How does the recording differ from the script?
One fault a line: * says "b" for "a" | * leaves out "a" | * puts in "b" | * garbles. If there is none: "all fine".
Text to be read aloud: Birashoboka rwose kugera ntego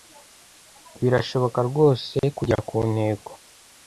* puts in "ku"